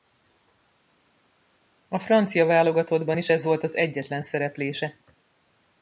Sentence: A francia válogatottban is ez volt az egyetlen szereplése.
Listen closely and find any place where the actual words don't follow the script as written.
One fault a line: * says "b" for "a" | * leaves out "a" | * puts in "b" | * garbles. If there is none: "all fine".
all fine